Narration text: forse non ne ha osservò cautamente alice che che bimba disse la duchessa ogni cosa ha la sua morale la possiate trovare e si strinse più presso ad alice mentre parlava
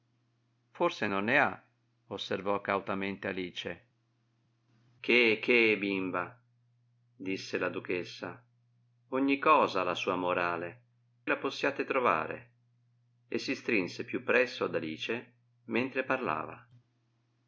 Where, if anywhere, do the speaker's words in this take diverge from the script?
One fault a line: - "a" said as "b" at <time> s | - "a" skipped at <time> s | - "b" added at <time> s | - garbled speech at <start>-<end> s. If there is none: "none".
none